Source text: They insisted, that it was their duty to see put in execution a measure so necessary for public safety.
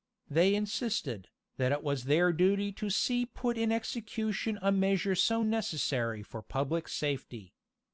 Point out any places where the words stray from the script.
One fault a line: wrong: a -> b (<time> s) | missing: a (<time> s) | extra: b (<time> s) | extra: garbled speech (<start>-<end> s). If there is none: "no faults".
no faults